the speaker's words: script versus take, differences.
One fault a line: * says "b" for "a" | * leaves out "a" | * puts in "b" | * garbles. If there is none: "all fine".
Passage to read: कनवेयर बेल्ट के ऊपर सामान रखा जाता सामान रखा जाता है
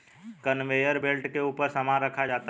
* leaves out "सामान रखा जाता"